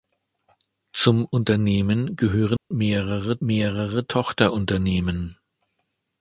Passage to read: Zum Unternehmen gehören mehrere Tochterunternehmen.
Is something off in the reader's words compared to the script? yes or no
yes